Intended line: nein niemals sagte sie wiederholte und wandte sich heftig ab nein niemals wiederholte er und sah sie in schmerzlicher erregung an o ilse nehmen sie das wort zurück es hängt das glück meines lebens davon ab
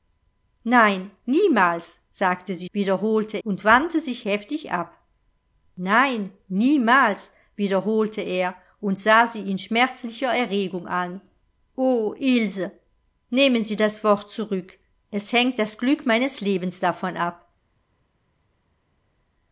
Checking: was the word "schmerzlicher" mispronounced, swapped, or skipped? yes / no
no